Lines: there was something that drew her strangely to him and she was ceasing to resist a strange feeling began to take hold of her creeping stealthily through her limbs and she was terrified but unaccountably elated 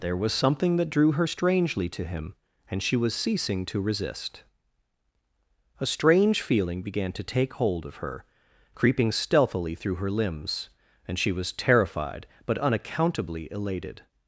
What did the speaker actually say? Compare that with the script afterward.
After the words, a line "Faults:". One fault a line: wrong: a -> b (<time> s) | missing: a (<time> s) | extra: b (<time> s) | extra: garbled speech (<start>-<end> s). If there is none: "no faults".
there was something that drew her strangely to him and she was ceasing to resist a strange feeling began to take hold of her creeping stealthily through her limbs and she was terrified but unaccountably elated
Faults:
no faults